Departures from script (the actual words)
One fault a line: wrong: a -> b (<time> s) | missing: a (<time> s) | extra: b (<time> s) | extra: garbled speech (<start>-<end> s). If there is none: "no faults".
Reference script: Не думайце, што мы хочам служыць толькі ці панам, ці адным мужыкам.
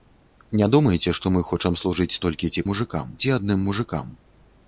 wrong: панам -> мужыкам (2.7 s)